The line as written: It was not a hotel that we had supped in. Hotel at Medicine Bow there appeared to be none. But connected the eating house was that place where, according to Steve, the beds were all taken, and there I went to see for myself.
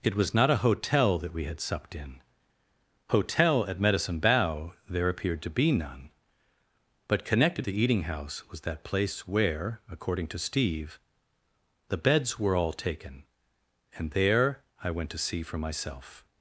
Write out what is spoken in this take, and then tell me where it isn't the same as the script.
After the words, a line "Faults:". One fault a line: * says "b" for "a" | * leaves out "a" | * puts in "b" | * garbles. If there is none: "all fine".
It was not a hotel that we had supped in. Hotel at Medicine Bow there appeared to be none. But connected the eating house was that place where, according to Steve, the beds were all taken, and there I went to see for myself.
Faults:
all fine